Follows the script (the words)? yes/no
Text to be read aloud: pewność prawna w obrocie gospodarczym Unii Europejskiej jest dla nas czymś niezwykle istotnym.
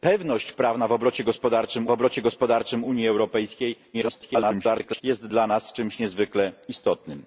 no